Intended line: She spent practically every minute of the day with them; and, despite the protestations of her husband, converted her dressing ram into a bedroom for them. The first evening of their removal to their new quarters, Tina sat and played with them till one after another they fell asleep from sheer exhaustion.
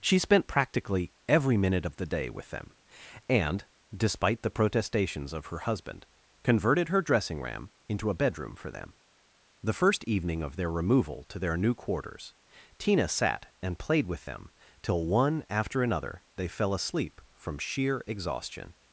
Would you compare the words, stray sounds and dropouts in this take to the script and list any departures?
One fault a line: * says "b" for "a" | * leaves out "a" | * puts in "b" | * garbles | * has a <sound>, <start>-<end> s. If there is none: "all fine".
all fine